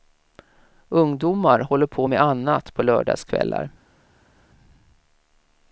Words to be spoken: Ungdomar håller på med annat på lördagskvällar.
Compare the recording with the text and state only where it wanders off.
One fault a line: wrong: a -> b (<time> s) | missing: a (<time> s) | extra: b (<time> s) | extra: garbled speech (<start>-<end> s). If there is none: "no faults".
no faults